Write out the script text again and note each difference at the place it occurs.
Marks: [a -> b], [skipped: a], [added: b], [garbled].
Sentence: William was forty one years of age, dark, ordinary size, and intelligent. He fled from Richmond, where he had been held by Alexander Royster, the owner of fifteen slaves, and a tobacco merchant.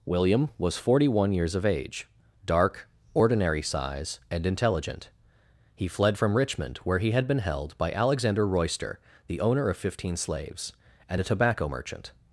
William was forty one years of age, dark, ordinary size, and intelligent. He fled from Richmond, where he had been held by Alexander Royster, the owner of fifteen slaves, and a tobacco merchant.